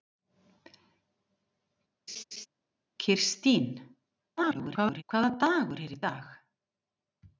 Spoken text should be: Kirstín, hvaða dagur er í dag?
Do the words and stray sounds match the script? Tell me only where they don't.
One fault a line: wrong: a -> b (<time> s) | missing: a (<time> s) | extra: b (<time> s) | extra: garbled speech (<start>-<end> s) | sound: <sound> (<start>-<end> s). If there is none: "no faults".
sound: laugh (2.1-2.5 s)
extra: garbled speech (4.4-5.0 s)